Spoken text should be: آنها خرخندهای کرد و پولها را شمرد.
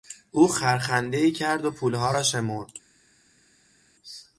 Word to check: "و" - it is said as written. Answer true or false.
true